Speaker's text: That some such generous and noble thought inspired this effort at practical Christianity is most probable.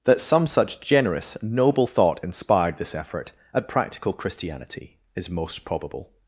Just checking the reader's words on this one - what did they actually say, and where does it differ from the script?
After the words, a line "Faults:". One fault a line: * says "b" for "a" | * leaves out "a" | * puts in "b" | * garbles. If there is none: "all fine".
That some such generous noble thought inspired this effort at practical Christianity is most probable.
Faults:
* leaves out "and"